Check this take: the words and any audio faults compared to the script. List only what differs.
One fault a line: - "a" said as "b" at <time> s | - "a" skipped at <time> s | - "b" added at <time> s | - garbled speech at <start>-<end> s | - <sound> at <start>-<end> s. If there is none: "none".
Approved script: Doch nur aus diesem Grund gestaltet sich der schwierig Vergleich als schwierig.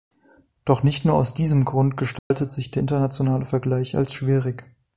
- "nicht" added at 0.8 s
- dropout at 2.2-2.3 s
- "schwierig" said as "internationale" at 2.8 s